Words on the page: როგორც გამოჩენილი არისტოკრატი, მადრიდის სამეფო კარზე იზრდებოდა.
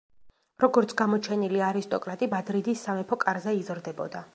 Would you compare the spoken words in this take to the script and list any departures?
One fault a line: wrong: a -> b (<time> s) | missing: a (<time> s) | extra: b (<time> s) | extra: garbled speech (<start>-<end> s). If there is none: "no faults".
no faults